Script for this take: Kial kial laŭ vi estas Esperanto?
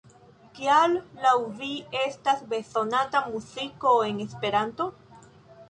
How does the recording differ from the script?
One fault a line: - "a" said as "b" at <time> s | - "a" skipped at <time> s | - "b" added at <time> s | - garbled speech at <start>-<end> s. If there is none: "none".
- "kial" skipped at 0.9 s
- "bezonata muziko en" added at 2.5 s